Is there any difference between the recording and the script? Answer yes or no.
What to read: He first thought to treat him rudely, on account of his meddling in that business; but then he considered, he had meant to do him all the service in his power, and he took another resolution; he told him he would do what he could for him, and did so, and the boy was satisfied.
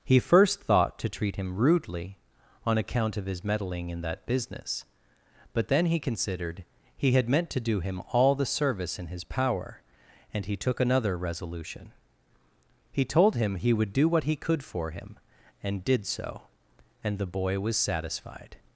no